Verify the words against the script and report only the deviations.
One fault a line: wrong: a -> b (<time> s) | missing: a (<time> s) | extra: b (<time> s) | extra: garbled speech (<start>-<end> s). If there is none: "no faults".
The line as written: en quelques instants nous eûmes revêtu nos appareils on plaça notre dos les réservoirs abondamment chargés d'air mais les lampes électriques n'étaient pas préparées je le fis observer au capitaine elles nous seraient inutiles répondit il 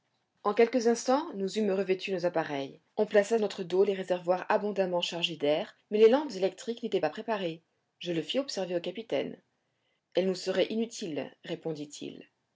no faults